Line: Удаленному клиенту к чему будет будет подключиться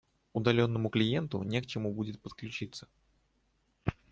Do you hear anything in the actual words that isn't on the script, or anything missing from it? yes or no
yes